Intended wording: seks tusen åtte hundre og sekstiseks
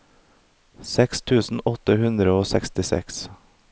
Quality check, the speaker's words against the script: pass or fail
pass